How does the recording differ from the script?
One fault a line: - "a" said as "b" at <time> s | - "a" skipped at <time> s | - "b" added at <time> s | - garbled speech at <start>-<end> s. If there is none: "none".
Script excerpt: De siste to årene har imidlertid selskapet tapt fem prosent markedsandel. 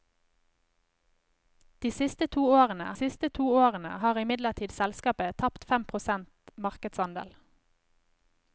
- "siste to årene" added at 3.0 s